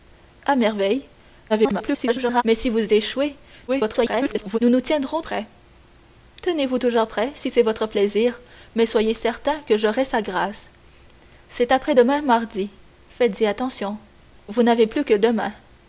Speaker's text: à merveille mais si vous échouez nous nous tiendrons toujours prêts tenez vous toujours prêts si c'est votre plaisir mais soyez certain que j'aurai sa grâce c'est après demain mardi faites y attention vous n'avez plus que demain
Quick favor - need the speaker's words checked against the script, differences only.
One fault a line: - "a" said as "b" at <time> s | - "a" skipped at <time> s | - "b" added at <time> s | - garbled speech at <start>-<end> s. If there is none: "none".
- garbled speech at 1.5-2.4 s
- garbled speech at 3.7-4.6 s
- "toujours" skipped at 5.2 s